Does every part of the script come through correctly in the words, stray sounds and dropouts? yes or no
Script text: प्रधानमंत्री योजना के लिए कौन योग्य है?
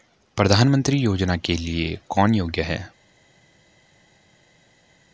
yes